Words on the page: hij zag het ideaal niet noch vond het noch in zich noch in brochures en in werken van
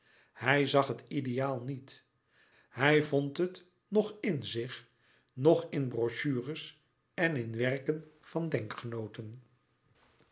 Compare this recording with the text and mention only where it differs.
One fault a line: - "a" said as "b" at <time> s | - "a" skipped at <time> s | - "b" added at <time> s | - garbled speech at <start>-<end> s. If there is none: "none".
- "noch" said as "hij" at 2.7 s